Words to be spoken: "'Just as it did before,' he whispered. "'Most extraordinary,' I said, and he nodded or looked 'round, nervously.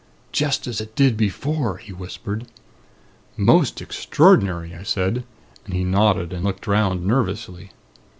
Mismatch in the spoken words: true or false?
true